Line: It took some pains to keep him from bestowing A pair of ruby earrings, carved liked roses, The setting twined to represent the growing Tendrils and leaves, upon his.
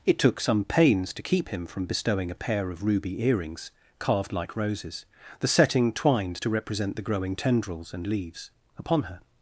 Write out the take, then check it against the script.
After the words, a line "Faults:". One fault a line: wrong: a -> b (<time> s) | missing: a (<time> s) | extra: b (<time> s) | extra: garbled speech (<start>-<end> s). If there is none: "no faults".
It took some pains to keep him from bestowing A pair of ruby earrings, carved like roses, The setting twined to represent the growing Tendrils and leaves, upon her.
Faults:
wrong: liked -> like (4.3 s)
wrong: his -> her (9.0 s)